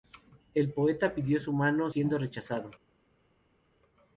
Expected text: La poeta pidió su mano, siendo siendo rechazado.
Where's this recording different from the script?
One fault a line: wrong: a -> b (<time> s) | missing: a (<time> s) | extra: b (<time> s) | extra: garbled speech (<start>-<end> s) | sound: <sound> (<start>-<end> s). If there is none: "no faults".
wrong: La -> El (0.6 s)
missing: siendo (2.2 s)